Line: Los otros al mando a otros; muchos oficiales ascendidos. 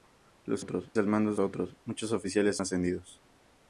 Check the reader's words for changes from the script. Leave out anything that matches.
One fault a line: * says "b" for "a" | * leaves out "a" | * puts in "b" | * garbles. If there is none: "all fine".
all fine